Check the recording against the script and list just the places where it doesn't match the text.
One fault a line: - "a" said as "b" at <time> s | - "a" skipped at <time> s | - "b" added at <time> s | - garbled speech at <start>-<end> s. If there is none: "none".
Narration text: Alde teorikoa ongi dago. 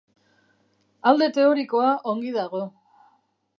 none